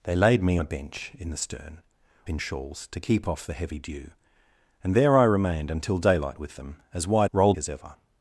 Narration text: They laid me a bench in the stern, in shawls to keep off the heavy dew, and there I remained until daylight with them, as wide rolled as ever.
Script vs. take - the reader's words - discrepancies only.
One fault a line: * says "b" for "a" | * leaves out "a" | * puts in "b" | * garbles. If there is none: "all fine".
all fine